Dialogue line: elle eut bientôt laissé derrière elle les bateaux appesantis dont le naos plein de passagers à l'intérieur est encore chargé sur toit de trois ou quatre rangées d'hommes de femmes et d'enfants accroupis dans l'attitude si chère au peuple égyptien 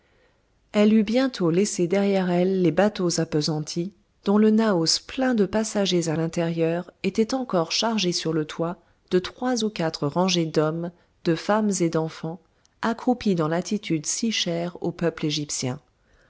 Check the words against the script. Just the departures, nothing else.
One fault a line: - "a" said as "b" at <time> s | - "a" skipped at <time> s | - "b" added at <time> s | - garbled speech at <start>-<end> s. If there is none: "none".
- "est" said as "était" at 7.0 s
- "le" added at 8.3 s